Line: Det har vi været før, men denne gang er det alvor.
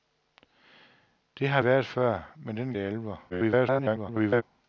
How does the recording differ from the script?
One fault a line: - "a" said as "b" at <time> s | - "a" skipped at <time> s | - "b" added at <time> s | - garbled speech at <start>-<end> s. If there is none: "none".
- "vi" skipped at 1.6 s
- "gang" skipped at 2.7 s
- garbled speech at 3.3-4.4 s